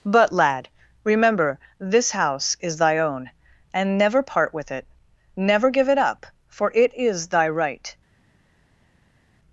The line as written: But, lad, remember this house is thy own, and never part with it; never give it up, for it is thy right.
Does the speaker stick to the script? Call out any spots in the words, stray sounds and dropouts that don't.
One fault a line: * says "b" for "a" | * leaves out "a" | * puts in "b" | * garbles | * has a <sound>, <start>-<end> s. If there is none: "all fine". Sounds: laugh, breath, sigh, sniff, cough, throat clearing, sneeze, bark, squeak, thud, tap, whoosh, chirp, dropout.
all fine